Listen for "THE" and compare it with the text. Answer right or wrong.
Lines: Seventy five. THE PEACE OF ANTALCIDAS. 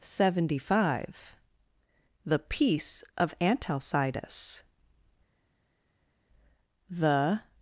right